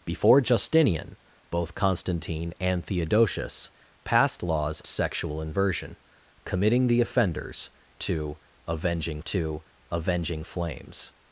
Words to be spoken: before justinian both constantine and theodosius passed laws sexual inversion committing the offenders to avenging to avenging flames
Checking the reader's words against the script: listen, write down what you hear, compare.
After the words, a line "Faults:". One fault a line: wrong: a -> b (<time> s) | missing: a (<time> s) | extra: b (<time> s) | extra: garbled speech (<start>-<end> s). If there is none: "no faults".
before justinian both constantine and theodosius passed laws sexual inversion committing the offenders to avenging to avenging flames
Faults:
no faults